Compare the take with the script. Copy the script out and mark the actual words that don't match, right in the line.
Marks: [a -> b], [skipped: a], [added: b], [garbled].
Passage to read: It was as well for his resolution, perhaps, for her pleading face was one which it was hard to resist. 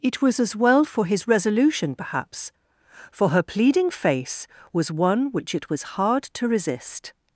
It was as well for his resolution, perhaps, for her pleading face was one which it was hard to resist.